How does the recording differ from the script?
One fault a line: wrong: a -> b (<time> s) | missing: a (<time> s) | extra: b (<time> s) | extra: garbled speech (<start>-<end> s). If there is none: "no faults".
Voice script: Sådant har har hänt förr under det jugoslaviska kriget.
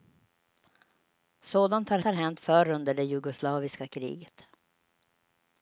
no faults